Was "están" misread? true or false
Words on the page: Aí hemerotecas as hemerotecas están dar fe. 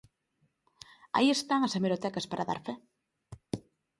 true